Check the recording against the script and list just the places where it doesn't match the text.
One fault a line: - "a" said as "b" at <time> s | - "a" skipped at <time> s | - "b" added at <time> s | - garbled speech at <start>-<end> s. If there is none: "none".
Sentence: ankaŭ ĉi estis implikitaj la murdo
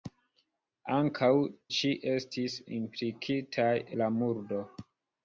none